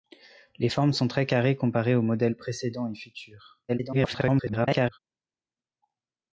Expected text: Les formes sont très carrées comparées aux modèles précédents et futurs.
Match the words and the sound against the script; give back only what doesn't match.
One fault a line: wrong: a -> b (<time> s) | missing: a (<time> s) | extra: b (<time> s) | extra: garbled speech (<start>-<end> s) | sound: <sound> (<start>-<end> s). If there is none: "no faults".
extra: garbled speech (3.7-5.0 s)